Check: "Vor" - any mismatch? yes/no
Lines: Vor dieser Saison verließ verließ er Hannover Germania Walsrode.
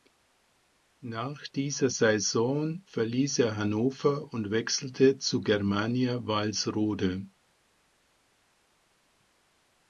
yes